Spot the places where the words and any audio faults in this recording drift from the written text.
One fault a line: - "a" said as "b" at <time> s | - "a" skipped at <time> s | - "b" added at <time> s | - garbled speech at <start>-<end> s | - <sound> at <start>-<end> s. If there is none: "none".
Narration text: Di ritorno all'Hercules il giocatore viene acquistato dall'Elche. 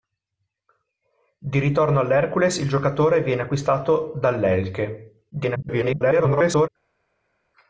- garbled speech at 5.3-6.7 s